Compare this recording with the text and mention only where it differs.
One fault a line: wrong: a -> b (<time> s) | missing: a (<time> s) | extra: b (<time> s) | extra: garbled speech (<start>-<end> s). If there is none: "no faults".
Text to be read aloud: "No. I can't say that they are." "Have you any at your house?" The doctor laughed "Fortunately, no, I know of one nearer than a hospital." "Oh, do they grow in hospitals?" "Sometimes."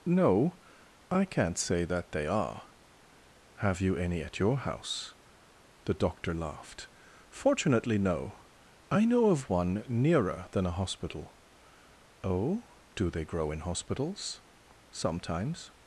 no faults